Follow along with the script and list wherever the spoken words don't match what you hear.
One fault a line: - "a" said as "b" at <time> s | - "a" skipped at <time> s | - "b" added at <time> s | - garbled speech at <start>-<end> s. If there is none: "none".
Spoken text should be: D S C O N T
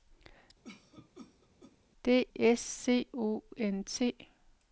none